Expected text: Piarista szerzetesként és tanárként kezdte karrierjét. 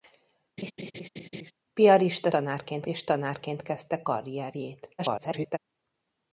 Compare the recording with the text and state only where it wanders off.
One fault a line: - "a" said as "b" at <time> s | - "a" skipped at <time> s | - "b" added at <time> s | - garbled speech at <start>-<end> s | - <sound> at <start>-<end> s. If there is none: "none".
- laugh at 0.6-1.5 s
- "szerzetesként" said as "tanárként" at 2.3 s
- garbled speech at 5.0-5.6 s